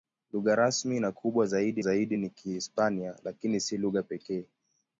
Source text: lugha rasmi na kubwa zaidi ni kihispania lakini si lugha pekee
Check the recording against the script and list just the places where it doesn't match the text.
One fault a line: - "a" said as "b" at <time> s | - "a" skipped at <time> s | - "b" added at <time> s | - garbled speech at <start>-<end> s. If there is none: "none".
- "zaidi" added at 1.8 s